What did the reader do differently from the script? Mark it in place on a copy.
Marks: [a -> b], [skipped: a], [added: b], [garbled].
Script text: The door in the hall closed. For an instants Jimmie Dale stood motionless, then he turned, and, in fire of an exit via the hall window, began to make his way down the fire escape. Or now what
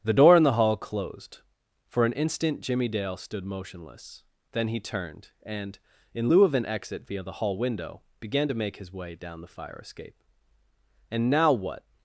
The door in the hall closed. For an [instants -> instant] Jimmie Dale stood motionless, then he turned, and, in [fire -> lieu] of an exit via the hall window, began to make his way down the fire escape. [Or -> And] now what